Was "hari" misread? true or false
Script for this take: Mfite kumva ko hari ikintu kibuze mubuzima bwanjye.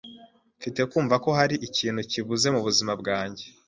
false